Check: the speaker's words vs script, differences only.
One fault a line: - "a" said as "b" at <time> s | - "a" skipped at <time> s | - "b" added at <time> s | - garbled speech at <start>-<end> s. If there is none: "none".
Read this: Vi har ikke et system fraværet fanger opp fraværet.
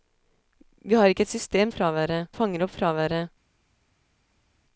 none